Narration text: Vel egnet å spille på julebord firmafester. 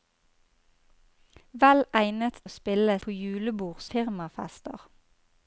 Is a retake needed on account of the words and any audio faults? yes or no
no